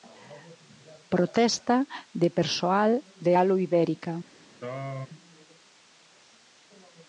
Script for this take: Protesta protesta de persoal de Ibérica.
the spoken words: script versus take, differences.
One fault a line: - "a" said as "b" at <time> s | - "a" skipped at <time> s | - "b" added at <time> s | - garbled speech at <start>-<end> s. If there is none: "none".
- "protesta" skipped at 1.8 s
- "Alu" added at 3.4 s